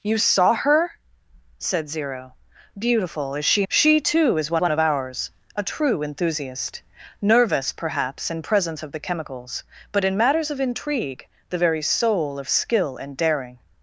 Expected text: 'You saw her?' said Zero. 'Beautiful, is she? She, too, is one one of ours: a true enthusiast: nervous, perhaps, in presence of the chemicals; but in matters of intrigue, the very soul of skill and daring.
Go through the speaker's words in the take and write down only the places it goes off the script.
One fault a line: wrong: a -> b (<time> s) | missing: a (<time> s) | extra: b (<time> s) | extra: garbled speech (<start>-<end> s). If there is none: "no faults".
no faults